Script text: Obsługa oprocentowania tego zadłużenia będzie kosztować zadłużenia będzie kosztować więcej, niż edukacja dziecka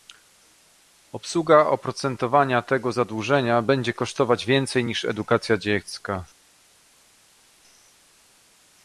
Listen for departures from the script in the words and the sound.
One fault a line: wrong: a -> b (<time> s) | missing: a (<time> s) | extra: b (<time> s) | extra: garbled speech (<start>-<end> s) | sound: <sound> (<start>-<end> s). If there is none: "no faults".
missing: zadłużenia będzie kosztować (4.5 s)